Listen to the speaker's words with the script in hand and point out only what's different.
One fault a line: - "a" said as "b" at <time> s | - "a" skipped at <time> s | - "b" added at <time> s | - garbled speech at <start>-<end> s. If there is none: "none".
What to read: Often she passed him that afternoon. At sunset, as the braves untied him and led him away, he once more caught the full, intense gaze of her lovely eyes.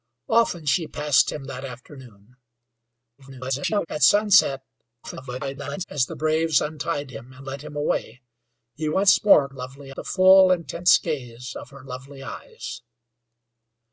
- garbled speech at 3.2-3.9 s
- garbled speech at 5.0-5.8 s
- "caught" said as "lovely" at 9.5 s